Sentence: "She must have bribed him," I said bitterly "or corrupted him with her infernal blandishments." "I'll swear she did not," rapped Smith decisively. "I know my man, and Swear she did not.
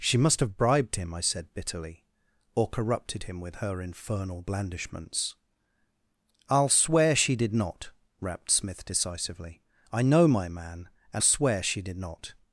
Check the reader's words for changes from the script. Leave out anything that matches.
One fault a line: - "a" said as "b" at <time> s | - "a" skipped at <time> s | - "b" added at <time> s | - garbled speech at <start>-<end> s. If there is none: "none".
none